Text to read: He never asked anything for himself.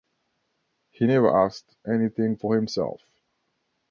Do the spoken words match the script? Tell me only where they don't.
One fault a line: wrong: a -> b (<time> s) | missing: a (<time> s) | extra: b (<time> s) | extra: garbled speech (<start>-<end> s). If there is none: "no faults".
no faults